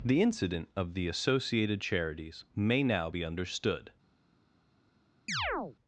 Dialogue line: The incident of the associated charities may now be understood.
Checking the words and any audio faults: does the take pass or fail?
fail